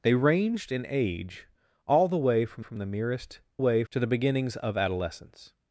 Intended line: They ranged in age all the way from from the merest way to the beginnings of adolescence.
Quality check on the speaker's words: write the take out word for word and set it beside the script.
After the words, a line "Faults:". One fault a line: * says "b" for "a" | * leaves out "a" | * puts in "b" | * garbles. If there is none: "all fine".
They ranged in age all the way from from the merest way to the beginnings of adolescence.
Faults:
all fine